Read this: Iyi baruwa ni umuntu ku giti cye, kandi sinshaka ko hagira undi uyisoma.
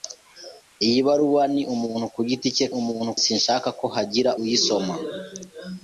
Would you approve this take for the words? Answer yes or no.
no